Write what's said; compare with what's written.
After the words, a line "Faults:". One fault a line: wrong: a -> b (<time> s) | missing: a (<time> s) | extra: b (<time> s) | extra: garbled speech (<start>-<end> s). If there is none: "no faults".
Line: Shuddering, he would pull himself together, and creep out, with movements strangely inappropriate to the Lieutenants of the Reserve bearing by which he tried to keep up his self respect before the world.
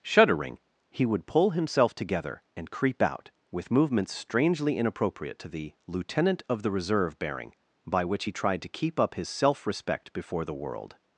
Shuddering, he would pull himself together, and creep out, with movements strangely inappropriate to the Lieutenant of the Reserve bearing by which he tried to keep up his self respect before the world.
Faults:
wrong: Lieutenants -> Lieutenant (5.9 s)